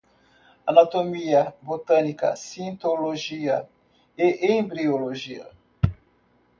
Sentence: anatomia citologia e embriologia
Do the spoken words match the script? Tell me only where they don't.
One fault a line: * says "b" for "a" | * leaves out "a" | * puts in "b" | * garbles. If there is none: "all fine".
* puts in "botânica"